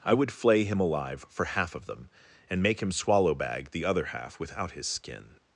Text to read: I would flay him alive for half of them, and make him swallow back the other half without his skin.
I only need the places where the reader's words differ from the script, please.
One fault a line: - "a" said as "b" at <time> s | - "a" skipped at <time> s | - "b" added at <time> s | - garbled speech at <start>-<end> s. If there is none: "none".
- "back" said as "bag" at 3.4 s